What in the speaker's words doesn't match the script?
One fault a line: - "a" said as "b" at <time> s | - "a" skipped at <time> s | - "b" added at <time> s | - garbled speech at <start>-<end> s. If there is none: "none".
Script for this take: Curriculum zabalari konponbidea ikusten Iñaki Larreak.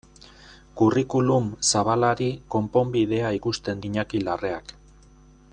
none